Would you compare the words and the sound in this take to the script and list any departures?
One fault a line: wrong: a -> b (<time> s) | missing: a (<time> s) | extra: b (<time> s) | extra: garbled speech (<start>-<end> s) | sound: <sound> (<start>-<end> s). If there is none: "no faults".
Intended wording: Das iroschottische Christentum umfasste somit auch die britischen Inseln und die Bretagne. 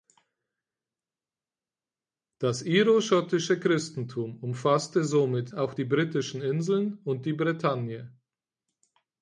no faults